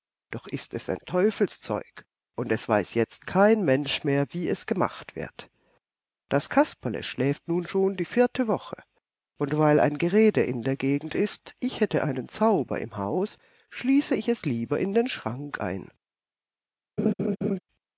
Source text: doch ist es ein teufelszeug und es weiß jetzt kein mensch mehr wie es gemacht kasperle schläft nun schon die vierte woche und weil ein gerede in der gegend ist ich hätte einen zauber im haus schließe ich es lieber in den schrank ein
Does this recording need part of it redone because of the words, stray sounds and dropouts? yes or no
yes